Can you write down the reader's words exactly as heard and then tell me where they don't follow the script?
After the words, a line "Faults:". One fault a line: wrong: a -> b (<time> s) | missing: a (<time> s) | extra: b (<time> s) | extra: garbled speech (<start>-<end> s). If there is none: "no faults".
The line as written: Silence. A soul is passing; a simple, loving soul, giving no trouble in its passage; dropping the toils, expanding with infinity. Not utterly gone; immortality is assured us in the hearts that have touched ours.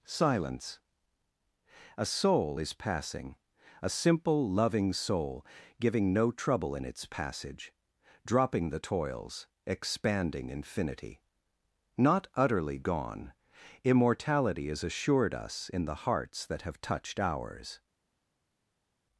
Silence. A soul is passing; a simple, loving soul, giving no trouble in its passage; dropping the toils, expanding infinity. Not utterly gone; immortality is assured us in the hearts that have touched ours.
Faults:
missing: with (10.5 s)